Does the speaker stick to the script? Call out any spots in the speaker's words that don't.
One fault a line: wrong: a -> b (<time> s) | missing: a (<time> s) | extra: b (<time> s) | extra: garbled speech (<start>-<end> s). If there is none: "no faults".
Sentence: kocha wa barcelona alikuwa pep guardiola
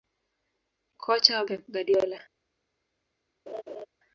missing: barcelona alikuwa (1.4 s)